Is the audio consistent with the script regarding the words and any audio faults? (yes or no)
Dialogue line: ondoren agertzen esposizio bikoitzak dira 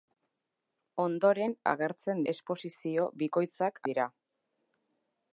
yes